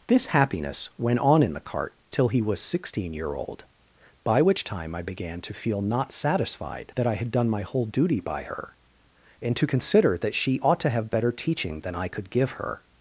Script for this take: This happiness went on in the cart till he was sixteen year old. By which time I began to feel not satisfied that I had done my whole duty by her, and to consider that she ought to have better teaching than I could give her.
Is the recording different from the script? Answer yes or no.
no